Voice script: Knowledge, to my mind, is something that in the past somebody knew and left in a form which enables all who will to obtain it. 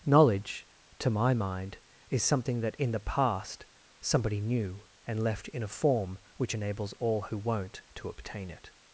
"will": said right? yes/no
no